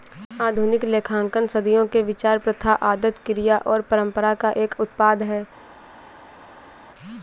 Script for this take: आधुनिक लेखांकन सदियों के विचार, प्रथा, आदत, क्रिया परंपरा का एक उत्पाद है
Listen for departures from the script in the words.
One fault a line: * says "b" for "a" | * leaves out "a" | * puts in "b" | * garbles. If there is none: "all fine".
* puts in "और"